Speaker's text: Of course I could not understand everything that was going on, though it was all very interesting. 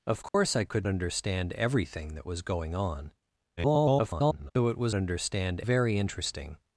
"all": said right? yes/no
no